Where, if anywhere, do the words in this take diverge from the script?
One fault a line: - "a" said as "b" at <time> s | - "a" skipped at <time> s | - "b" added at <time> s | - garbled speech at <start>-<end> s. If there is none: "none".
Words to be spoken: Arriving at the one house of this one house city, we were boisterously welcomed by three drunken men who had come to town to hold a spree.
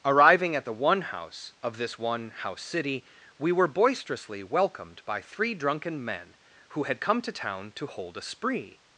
none